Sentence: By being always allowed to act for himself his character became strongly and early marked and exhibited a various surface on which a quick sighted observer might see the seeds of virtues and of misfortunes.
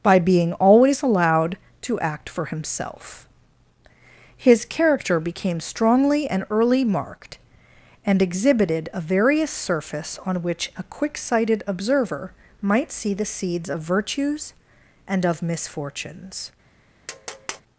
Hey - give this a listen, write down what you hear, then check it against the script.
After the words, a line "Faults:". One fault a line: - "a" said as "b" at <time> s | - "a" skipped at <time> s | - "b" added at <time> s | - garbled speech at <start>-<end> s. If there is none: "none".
By being always allowed to act for himself his character became strongly and early marked and exhibited a various surface on which a quick sighted observer might see the seeds of virtues and of misfortunes.
Faults:
none